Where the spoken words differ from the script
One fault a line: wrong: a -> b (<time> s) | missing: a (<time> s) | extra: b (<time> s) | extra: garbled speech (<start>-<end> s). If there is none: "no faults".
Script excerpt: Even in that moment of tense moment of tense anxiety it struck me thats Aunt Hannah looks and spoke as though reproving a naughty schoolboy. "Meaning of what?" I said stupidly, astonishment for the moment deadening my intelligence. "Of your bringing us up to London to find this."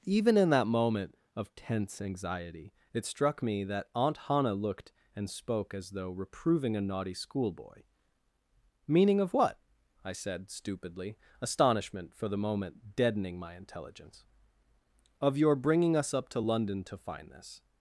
missing: moment of tense (2.0 s)
wrong: thats -> that (3.6 s)
wrong: looks -> looked (4.5 s)